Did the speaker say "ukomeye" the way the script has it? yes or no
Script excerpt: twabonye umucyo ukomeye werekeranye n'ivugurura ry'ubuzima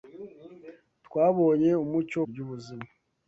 no